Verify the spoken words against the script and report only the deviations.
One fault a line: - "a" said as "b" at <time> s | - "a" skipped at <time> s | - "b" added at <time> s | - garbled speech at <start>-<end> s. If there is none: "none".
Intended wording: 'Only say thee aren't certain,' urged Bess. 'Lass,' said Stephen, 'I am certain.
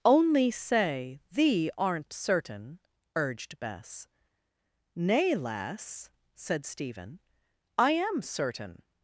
- "Nay" added at 4.9 s